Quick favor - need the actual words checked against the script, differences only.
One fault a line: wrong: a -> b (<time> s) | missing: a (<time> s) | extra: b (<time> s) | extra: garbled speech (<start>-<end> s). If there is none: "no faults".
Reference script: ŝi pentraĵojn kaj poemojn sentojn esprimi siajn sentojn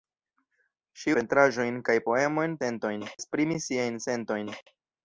no faults